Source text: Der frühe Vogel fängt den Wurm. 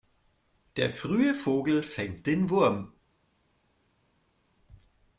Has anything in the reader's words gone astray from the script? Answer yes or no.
no